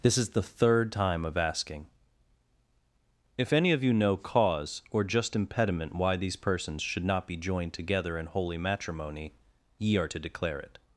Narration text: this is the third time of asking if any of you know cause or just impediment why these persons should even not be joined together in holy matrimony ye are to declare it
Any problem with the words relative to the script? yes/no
yes